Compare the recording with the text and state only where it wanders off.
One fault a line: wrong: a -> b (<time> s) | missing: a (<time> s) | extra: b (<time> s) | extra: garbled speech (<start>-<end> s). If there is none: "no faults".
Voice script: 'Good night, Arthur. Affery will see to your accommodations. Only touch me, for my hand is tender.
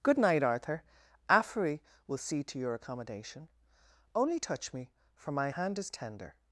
wrong: accommodations -> accommodation (2.7 s)